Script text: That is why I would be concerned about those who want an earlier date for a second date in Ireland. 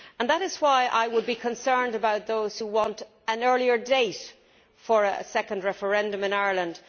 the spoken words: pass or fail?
fail